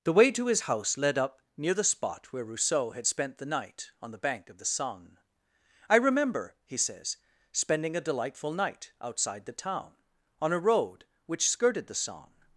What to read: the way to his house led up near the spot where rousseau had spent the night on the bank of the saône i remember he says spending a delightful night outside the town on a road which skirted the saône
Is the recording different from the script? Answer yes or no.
no